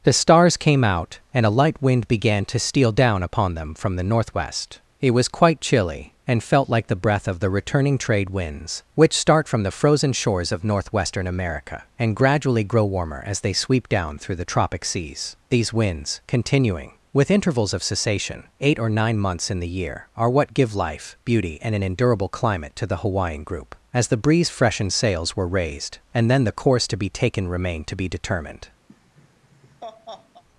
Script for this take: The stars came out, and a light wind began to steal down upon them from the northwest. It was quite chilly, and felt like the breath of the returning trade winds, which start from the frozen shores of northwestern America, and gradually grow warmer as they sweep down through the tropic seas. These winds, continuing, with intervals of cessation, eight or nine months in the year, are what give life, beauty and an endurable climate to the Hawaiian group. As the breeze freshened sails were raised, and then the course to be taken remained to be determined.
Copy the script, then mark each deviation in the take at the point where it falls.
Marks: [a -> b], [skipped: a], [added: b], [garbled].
The stars came out, and a light wind began to steal down upon them from the northwest. It was quite chilly, and felt like the breath of the returning trade winds, which start from the frozen shores of northwestern America, and gradually grow warmer as they sweep down through the tropic seas. These winds, continuing, with intervals of cessation, eight or nine months in the year, are what give life, beauty and an endurable climate to the Hawaiian group. As the breeze freshened sails were raised, and then the course to be taken remained to be determined.